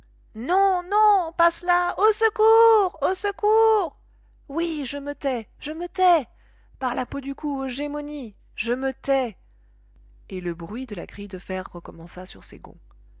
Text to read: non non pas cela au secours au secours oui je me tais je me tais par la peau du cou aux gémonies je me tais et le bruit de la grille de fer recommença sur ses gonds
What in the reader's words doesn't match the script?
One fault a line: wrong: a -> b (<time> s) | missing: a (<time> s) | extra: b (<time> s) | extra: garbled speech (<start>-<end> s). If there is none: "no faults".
no faults